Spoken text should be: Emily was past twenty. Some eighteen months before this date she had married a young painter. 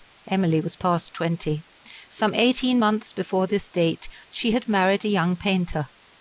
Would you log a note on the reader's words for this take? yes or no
no